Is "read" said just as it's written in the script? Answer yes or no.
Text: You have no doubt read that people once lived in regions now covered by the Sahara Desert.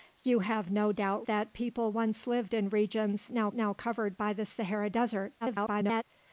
no